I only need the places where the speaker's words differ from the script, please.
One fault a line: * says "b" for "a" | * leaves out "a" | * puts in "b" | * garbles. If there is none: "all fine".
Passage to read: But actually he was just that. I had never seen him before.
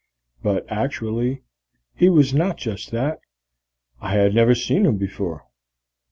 * puts in "not"